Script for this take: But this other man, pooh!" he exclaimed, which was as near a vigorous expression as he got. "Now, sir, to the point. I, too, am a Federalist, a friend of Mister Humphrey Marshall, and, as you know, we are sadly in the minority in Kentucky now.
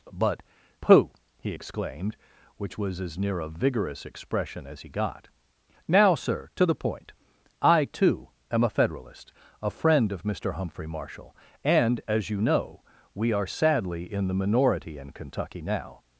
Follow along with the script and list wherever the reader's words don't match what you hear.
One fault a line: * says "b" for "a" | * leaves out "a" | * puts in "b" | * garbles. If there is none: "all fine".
* leaves out "this other man"